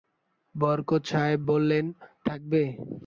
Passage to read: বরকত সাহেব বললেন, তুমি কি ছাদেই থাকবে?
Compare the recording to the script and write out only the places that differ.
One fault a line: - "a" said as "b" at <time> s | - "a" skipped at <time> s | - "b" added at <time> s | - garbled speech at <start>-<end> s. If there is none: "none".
- "তুমি কি ছাদেই" skipped at 1.8 s